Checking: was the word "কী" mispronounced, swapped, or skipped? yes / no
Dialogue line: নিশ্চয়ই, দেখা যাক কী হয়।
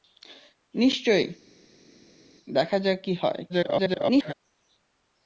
no